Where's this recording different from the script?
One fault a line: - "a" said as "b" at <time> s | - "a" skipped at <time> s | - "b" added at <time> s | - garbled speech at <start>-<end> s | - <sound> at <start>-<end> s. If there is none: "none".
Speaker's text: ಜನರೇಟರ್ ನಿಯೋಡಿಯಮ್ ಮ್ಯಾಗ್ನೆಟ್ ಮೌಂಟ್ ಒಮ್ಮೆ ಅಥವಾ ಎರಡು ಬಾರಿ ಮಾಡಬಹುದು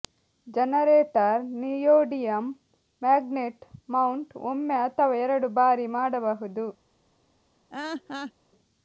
- laugh at 7.7-8.3 s